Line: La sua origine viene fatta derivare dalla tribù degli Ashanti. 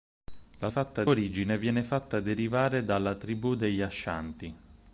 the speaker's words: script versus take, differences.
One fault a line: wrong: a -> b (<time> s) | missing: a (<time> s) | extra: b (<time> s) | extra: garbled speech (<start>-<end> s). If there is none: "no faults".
wrong: sua -> fatta (0.7 s)